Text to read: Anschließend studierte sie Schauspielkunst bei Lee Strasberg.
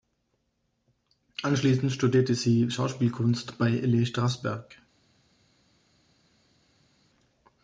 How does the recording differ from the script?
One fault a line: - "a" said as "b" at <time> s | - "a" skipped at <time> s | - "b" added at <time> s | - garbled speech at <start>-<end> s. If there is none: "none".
none